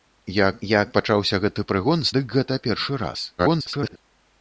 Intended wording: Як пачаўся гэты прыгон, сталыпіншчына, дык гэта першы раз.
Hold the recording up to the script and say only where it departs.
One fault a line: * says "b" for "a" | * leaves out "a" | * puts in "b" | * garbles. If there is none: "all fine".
* puts in "як"
* leaves out "сталыпіншчына"
* garbles